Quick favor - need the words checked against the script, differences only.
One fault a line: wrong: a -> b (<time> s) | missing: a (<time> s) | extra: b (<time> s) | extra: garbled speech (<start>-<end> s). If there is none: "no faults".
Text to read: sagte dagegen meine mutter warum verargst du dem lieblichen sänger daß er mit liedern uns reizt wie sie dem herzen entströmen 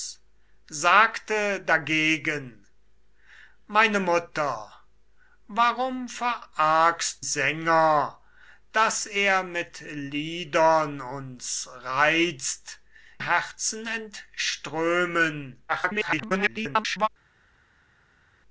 missing: du dem lieblichen (7.2 s)
missing: wie sie dem (12.8 s)
extra: garbled speech (15.7-17.1 s)